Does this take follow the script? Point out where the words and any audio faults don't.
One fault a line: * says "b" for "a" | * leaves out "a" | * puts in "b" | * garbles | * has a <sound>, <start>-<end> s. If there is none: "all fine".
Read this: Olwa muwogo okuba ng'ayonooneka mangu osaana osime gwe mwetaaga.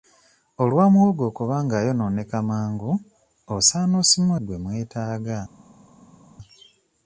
all fine